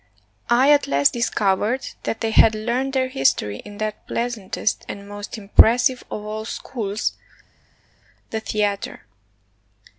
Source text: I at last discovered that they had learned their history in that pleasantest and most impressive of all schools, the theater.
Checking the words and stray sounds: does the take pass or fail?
pass